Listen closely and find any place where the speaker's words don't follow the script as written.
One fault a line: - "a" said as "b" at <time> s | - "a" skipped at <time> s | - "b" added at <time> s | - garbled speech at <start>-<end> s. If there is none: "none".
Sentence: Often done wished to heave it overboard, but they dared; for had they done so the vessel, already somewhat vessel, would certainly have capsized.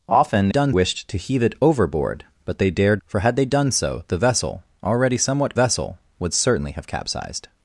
none